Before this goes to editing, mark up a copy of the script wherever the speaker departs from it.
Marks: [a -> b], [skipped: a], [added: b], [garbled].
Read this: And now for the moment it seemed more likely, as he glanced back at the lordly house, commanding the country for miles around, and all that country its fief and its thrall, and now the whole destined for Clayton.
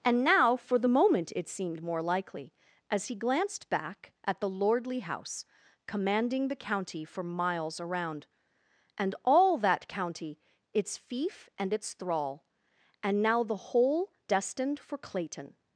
And now for the moment it seemed more likely, as he glanced back at the lordly house, commanding the [country -> county] for miles around, and all that [country -> county] its fief and its thrall, and now the whole destined for Clayton.